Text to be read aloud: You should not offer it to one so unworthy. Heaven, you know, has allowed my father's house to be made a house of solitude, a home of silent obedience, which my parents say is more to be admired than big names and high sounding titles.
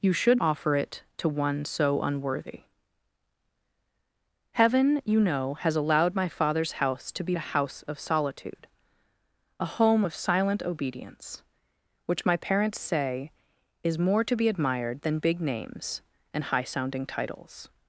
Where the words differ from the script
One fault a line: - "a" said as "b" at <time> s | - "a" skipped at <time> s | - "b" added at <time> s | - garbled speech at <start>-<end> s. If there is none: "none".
- "not" skipped at 0.4 s
- "made" skipped at 7.4 s